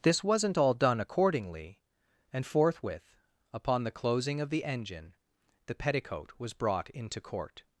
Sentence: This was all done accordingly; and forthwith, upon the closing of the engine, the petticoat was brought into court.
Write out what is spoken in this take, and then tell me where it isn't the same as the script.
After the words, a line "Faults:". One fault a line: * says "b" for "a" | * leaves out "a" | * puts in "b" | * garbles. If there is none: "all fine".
This wasn't all done accordingly; and forthwith, upon the closing of the engine, the petticoat was brought into court.
Faults:
* says "wasn't" for "was"